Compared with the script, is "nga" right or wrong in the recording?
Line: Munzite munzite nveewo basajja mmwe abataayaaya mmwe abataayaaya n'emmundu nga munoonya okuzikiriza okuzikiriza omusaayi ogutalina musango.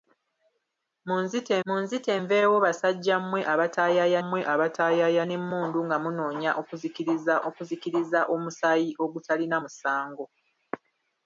right